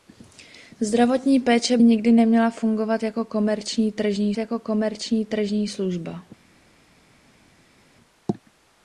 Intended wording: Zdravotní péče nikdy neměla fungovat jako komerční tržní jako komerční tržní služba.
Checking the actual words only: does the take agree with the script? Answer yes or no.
yes